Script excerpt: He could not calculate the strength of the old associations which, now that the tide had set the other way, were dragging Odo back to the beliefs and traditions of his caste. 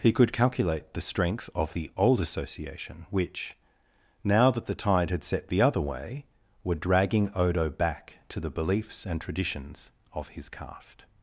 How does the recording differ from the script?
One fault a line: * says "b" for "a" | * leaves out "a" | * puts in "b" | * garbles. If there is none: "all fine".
* leaves out "not"
* says "association" for "associations"